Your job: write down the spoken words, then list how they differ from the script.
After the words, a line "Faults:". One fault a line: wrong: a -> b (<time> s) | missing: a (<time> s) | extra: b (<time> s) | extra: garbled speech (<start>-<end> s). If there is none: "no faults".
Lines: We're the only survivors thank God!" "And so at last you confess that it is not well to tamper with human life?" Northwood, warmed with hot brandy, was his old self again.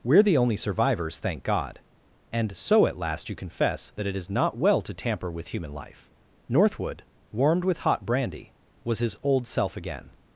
We're the only survivors thank God!" "And so at last you confess that it is not well to tamper with human life?" Northwood, warmed with hot brandy, was his old self again.
Faults:
no faults